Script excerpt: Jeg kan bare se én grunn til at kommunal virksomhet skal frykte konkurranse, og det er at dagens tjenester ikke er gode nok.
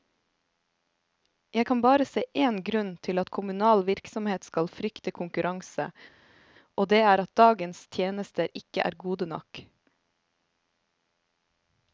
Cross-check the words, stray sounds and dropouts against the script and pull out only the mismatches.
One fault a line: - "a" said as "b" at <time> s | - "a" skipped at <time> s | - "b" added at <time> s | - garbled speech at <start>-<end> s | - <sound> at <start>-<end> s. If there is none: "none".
none